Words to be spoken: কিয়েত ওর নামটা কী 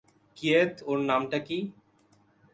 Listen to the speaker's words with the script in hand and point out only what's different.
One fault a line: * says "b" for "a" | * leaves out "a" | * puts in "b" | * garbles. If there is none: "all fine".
all fine